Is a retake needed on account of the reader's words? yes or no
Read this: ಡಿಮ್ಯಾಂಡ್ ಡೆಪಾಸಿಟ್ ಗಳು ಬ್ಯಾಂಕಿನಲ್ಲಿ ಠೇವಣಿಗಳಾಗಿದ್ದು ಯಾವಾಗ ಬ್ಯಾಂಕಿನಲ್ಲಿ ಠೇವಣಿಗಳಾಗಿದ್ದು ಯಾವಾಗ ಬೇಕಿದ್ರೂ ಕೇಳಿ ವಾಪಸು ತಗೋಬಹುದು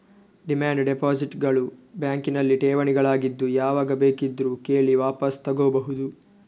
yes